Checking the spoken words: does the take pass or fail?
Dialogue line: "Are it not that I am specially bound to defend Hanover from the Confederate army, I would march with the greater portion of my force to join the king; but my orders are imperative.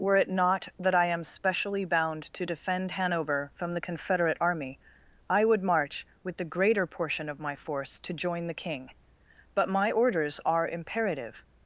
fail